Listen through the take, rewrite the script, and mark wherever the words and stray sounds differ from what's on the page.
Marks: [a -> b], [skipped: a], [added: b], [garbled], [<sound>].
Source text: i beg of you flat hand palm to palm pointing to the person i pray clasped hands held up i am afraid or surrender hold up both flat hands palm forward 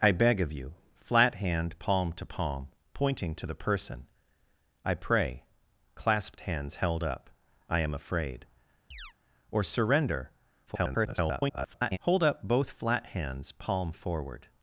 i beg of you flat hand palm to palm pointing to the person i pray clasped hands held up i am afraid [chirp] or surrender [garbled] hold up both flat hands palm forward